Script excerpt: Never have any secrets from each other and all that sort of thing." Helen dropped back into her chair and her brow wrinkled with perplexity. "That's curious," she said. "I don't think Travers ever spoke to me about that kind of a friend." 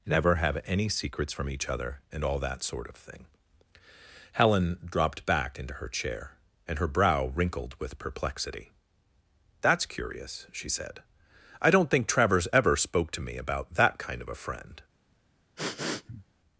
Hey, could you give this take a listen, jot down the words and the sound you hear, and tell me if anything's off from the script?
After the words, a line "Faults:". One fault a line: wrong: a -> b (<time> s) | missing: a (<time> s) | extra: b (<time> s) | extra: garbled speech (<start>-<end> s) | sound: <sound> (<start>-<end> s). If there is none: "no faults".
Never have any secrets from each other and all that sort of thing." Helen dropped back into her chair and her brow wrinkled with perplexity. "That's curious," she said. "I don't think Travers ever spoke to me about that kind of a friend."
Faults:
sound: sniff (15.6-16.2 s)